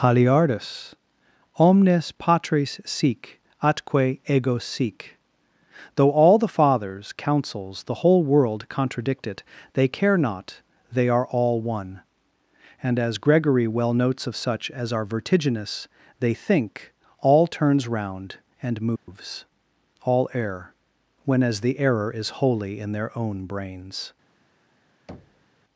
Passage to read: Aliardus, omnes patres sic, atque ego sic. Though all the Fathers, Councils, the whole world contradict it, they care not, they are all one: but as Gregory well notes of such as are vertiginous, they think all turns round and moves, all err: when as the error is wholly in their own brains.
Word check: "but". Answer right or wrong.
wrong